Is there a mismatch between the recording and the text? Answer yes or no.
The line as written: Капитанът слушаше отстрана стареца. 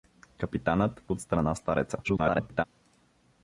yes